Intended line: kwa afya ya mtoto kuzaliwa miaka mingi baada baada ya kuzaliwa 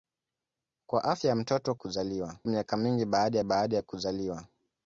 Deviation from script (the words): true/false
false